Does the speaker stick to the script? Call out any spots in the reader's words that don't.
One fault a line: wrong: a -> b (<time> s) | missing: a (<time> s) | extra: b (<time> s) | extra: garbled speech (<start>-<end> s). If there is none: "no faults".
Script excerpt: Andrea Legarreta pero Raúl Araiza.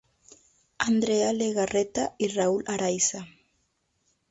wrong: pero -> y (2.2 s)